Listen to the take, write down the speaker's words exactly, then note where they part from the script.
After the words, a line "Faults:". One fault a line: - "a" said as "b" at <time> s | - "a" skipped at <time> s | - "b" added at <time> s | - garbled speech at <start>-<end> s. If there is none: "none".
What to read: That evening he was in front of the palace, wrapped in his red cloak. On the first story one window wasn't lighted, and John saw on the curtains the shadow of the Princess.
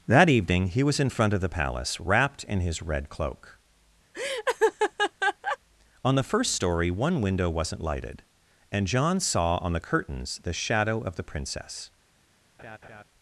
That evening he was in front of the palace, wrapped in his red cloak. On the first story one window wasn't lighted, and John saw on the curtains the shadow of the Princess.
Faults:
none